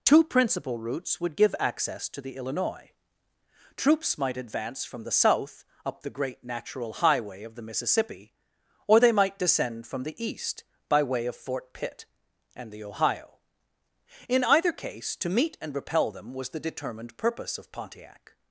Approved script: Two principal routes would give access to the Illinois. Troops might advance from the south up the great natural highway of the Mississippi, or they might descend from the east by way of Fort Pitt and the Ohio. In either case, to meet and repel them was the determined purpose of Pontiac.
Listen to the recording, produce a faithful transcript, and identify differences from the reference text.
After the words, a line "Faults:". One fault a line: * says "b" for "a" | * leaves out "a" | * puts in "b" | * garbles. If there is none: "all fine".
Two principal routes would give access to the Illinois. Troops might advance from the south up the great natural highway of the Mississippi, or they might descend from the east by way of Fort Pitt and the Ohio. In either case, to meet and repel them was the determined purpose of Pontiac.
Faults:
all fine